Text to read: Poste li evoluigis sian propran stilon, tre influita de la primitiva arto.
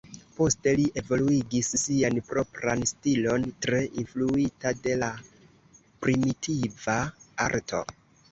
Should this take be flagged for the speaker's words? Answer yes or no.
no